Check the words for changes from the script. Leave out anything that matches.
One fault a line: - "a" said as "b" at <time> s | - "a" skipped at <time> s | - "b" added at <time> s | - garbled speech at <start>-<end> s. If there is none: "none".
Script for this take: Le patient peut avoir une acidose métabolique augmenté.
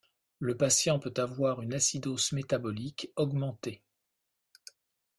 none